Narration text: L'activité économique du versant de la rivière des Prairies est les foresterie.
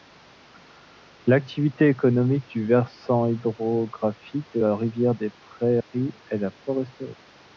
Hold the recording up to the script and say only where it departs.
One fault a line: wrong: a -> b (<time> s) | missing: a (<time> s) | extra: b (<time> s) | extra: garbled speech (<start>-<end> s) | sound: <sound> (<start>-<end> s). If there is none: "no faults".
extra: hydrographique (3.3 s)
sound: dropout (5.8-5.9 s)
wrong: les -> la (6.4 s)